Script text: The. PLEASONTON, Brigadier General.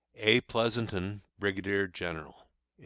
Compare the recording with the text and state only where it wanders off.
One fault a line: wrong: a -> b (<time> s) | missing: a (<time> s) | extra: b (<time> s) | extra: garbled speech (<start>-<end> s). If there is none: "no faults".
wrong: The -> A (0.1 s)